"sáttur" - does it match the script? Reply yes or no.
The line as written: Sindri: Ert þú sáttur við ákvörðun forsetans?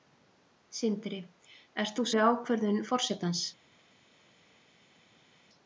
no